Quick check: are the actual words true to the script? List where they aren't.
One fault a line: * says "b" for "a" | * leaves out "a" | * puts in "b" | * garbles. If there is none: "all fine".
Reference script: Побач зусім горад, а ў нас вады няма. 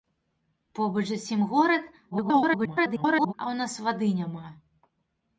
* garbles